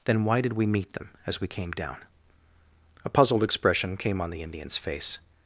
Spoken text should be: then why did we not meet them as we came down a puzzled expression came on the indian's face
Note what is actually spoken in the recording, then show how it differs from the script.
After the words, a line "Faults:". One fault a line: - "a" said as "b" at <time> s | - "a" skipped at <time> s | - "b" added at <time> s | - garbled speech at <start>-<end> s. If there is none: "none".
then why did we meet them as we came down a puzzled expression came on the indian's face
Faults:
- "not" skipped at 0.7 s